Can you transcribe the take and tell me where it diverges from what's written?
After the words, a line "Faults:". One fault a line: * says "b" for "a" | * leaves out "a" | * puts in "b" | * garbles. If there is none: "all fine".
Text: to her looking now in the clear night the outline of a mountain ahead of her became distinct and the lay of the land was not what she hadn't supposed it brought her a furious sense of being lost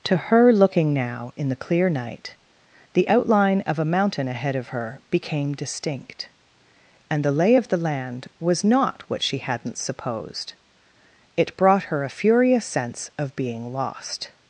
to her looking now in the clear night the outline of a mountain ahead of her became distinct and the lay of the land was not what she hadn't supposed it brought her a furious sense of being lost
Faults:
all fine